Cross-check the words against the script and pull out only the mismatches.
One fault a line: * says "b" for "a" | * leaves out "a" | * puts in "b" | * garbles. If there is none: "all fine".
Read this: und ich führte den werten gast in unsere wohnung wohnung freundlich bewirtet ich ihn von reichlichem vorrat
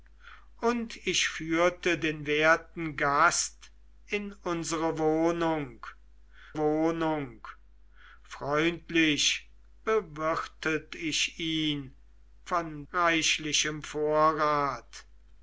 all fine